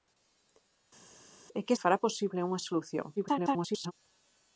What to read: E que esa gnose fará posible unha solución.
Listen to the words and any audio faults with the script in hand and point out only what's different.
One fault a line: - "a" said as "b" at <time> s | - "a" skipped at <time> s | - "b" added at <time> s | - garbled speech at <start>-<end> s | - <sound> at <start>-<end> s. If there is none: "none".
- "esa gnose" skipped at 1.7 s
- garbled speech at 3.2-3.9 s